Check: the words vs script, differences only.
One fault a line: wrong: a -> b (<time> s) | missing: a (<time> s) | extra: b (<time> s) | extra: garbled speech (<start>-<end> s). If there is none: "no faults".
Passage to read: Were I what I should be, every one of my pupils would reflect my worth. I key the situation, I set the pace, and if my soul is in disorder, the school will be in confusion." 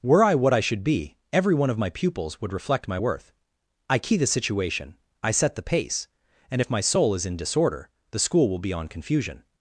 wrong: in -> on (8.7 s)